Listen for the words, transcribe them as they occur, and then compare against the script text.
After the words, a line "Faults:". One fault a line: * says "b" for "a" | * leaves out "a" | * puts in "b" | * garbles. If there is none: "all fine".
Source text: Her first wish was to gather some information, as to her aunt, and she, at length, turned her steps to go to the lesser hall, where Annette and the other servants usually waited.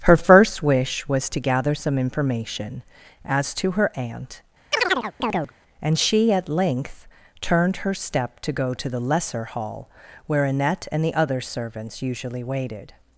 Her first wish was to gather some information, as to her aunt, and she, at length, turned her step to go to the lesser hall, where Annette and the other servants usually waited.
Faults:
* says "step" for "steps"